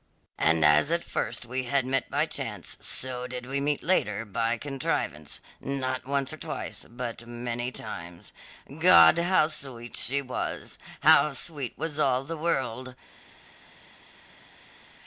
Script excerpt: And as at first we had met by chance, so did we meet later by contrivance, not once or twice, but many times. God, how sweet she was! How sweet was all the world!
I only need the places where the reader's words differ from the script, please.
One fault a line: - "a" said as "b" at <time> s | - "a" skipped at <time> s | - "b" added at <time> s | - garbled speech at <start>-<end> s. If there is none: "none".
none